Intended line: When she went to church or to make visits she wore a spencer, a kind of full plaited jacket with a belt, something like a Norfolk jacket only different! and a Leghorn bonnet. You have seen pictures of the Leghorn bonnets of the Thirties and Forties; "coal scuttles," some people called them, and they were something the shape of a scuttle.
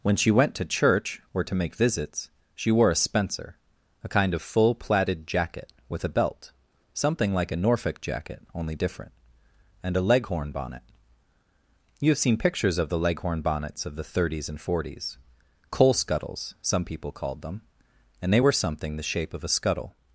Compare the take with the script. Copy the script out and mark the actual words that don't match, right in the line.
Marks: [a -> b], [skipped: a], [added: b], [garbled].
When she went to church or to make visits she wore a spencer, a kind of full plaited jacket with a belt, something like a Norfolk jacket only different! and a Leghorn bonnet. You have seen pictures of the Leghorn bonnets of the Thirties and Forties; "coal scuttles," some people called them, and they were something the shape of a scuttle.